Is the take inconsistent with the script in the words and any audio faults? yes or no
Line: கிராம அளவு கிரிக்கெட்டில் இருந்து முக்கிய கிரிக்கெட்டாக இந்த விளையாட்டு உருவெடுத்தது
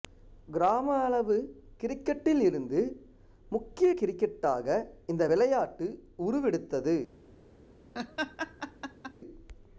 yes